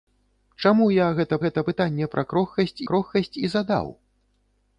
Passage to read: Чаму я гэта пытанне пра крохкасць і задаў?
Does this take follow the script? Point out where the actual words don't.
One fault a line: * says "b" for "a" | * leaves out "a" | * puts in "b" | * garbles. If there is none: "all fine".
* puts in "гэта"
* puts in "крохкасць"